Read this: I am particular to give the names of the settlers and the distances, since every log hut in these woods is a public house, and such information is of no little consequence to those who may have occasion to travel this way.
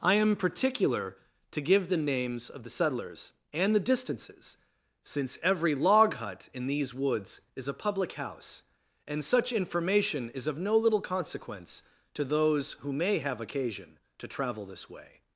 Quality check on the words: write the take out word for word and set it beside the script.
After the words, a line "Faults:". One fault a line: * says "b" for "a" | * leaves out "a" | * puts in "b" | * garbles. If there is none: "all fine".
I am particular to give the names of the settlers and the distances, since every log hut in these woods is a public house, and such information is of no little consequence to those who may have occasion to travel this way.
Faults:
all fine